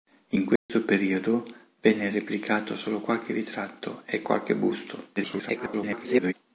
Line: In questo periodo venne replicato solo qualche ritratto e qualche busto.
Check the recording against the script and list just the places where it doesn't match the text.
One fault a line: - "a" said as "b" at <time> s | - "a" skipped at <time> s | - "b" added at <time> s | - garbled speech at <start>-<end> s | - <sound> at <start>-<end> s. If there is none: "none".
- dropout at 0.6-0.7 s
- garbled speech at 5.2-6.3 s